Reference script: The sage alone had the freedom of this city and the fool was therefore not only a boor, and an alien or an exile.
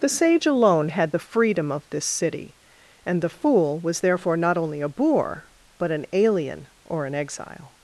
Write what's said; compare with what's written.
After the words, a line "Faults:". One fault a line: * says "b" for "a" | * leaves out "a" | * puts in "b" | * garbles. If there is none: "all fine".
The sage alone had the freedom of this city and the fool was therefore not only a boor, but an alien or an exile.
Faults:
* says "but" for "and"